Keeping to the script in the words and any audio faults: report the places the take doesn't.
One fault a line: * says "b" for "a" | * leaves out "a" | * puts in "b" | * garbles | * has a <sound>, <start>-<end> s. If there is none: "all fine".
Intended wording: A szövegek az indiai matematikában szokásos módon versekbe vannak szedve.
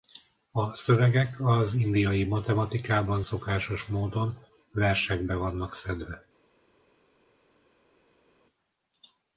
all fine